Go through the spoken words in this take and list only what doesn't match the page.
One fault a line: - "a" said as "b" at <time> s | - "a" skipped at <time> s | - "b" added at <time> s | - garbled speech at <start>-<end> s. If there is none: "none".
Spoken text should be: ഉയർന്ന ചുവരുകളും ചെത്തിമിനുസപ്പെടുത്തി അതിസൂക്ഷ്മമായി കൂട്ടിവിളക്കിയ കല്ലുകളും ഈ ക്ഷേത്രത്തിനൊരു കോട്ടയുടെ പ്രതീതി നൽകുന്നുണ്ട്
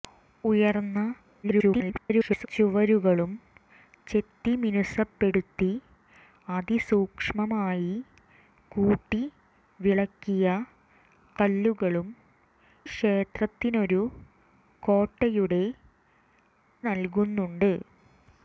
- garbled speech at 1.4-2.5 s
- "ഈ" skipped at 12.1 s
- "പ്രതീതി" skipped at 15.6 s